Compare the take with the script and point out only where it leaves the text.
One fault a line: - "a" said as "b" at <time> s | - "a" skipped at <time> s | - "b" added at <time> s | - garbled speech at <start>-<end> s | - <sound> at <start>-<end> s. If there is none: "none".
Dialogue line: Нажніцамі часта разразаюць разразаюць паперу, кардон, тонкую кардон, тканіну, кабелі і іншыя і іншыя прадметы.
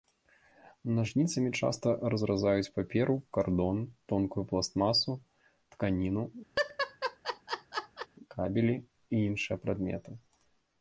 - "разразаюць" skipped at 2.7 s
- "кардон" said as "пластмасу" at 4.5 s
- laugh at 6.6-8.1 s
- "і іншыя" skipped at 9.6 s